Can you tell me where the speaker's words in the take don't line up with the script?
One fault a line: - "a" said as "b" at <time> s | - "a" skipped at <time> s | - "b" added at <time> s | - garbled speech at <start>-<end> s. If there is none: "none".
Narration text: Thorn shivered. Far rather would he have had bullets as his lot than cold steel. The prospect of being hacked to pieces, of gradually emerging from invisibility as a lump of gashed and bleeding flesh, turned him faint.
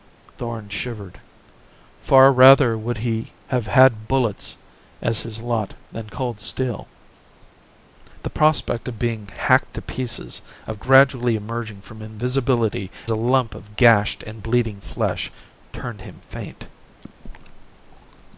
- "as" skipped at 12.9 s